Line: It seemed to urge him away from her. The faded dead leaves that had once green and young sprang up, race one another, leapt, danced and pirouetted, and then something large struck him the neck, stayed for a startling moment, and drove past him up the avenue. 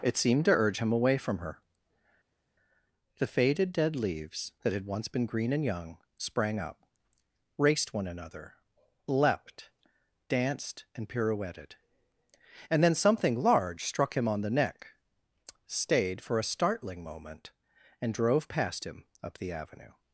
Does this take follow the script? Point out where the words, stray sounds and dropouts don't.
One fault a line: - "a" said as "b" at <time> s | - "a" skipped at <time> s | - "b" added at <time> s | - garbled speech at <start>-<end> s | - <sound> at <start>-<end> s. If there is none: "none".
- "been" added at 5.1 s
- "race" said as "raced" at 7.6 s
- "on" added at 14.3 s